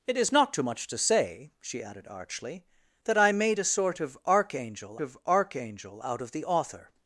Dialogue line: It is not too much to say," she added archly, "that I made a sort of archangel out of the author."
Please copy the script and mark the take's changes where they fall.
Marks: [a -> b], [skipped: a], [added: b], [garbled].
It is not too much to say," she added archly, "that I made a sort of archangel [added: of archangel] out of the author."